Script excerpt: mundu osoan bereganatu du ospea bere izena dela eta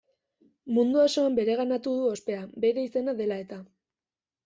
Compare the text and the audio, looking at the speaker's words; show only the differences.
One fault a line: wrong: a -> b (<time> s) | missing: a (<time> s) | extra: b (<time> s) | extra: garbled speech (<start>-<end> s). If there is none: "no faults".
no faults